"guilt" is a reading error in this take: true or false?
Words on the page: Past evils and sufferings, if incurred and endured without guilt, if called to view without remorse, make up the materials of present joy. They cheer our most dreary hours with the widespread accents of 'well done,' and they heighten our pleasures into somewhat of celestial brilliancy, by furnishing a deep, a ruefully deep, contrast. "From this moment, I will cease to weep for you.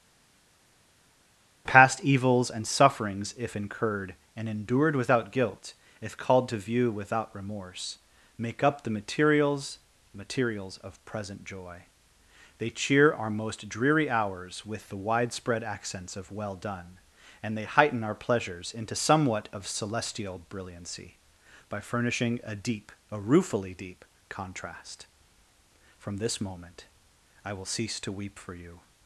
false